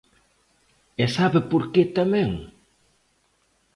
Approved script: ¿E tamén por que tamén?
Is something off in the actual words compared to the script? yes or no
yes